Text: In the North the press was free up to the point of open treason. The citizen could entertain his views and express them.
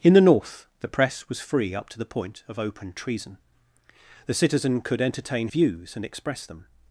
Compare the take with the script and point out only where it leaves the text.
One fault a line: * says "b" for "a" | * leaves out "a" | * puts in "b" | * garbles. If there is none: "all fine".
* leaves out "his"